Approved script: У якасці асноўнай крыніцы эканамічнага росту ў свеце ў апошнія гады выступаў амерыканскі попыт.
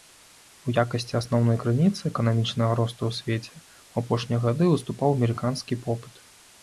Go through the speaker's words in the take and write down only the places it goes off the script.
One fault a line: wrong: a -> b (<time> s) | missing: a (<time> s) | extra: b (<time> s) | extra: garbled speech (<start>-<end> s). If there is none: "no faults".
no faults